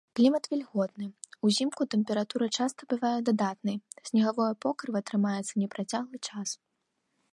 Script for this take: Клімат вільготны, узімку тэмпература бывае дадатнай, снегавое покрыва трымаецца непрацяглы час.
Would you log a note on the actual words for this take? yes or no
yes